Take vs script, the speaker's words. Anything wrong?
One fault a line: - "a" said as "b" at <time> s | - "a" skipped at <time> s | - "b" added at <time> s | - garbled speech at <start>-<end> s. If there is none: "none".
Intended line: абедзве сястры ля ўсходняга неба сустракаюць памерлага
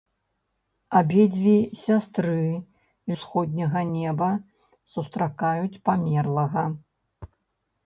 - "ля" skipped at 2.4 s